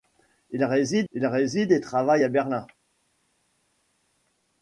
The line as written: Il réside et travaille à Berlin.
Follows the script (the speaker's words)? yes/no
no